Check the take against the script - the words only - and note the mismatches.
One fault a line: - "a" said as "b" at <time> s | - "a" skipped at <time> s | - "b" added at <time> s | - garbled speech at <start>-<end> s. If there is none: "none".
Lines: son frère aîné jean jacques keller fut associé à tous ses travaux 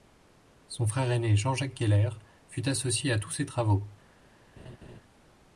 none